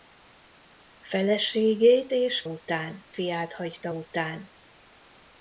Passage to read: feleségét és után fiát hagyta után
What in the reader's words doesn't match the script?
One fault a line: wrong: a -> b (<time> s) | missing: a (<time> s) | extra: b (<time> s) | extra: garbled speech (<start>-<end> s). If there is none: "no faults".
no faults